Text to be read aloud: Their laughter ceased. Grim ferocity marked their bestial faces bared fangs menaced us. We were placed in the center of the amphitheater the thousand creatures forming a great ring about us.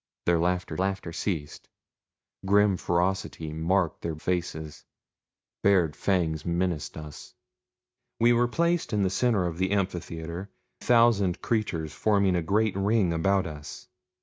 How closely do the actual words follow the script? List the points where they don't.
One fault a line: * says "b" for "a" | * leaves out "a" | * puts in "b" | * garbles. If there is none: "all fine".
* puts in "laughter"
* leaves out "bestial"
* leaves out "the"